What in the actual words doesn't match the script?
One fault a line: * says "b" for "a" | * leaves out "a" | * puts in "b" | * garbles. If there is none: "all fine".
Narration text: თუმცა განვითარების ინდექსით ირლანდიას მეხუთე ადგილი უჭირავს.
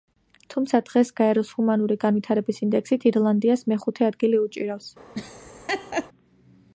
* puts in "დღეს გაეროს ჰუმანური"